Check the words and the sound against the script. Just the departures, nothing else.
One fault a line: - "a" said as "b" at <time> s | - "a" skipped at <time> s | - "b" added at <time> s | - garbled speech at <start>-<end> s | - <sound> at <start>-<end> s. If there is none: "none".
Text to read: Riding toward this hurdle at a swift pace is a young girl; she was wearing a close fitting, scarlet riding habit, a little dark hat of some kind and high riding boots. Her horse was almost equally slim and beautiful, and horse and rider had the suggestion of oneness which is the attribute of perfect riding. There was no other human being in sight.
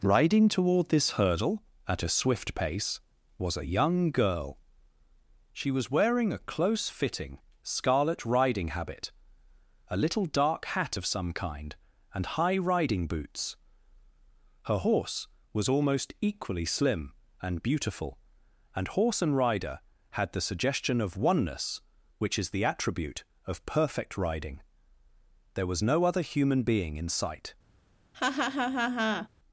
- "is" said as "was" at 3.4 s
- laugh at 28.1-29.3 s